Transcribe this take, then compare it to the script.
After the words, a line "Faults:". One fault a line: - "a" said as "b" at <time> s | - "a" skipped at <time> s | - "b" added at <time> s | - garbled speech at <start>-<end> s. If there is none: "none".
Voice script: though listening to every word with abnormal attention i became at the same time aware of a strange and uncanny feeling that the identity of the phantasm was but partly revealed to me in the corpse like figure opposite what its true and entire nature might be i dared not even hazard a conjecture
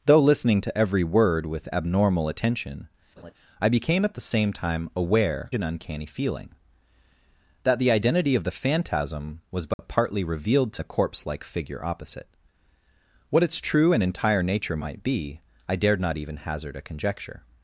though listening to every word with abnormal attention i became at the same time aware and uncanny feeling that the identity of the phantasm was but partly revealed to the corpse like figure opposite what its true and entire nature might be i dared not even hazard a conjecture
Faults:
- "of a strange" skipped at 5.5 s
- "me in" skipped at 10.8 s